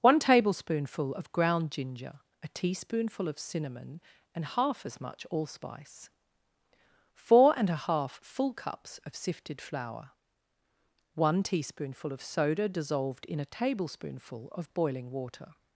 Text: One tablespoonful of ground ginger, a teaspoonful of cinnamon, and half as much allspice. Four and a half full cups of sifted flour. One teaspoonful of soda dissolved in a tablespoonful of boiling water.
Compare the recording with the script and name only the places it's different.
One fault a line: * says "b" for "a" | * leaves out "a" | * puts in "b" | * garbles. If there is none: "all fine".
all fine